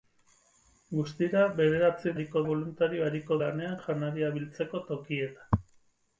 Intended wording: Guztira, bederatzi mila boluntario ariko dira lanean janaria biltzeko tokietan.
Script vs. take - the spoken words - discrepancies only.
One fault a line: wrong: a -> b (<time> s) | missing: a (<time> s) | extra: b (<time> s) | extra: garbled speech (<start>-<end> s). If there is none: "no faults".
wrong: mila -> ariko (2.2 s)
missing: dira (3.4 s)